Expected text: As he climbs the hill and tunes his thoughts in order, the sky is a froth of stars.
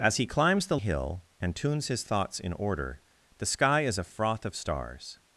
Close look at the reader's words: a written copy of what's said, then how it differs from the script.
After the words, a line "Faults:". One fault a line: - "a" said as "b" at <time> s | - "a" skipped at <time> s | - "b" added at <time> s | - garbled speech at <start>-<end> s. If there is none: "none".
As he climbs the hill and tunes his thoughts in order, the sky is a froth of stars.
Faults:
none